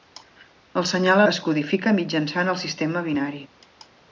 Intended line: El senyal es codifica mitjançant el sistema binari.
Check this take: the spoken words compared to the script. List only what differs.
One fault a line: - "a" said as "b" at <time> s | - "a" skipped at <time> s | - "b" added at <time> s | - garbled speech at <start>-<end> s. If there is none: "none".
none